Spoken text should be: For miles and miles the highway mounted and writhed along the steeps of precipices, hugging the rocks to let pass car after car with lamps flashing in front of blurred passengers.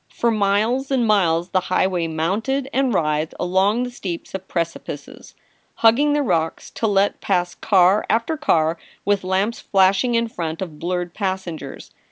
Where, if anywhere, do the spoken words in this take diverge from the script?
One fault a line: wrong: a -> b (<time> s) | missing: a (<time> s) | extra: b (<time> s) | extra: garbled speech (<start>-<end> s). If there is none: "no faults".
no faults